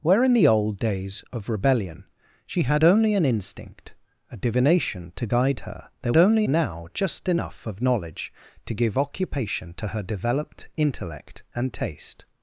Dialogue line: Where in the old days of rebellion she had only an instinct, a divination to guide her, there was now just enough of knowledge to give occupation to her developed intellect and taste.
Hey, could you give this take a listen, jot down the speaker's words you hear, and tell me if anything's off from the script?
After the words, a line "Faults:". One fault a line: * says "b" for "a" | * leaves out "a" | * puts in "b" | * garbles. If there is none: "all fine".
Where in the old days of rebellion she had only an instinct, a divination to guide her, there only now just enough of knowledge to give occupation to her developed intellect and taste.
Faults:
* says "only" for "was"